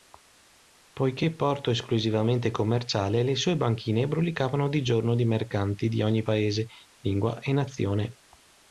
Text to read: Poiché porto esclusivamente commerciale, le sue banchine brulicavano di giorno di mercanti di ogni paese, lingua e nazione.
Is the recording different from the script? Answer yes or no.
no